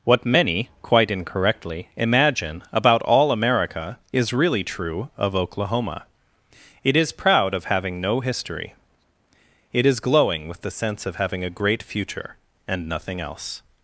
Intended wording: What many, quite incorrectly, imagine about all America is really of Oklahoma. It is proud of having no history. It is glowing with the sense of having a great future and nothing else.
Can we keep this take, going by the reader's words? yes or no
no